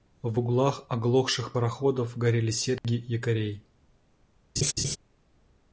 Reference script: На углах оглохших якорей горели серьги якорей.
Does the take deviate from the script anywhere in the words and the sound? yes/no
yes